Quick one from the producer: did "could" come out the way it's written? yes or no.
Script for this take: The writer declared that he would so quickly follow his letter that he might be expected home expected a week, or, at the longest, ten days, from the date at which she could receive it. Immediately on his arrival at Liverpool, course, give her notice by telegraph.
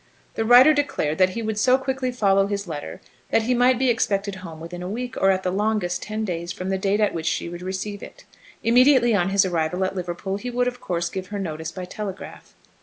no